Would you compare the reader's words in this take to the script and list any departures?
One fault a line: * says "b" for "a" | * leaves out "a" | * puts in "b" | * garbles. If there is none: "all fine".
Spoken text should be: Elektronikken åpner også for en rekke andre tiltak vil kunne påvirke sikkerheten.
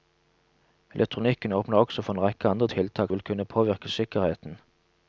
all fine